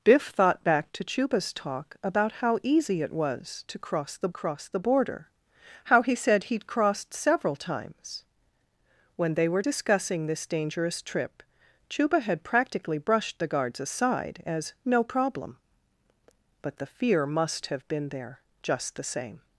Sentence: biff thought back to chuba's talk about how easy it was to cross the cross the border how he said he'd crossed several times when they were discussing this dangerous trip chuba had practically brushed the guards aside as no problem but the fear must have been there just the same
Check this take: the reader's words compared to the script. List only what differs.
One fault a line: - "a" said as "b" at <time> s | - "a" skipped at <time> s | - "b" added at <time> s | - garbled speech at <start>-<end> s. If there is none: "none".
none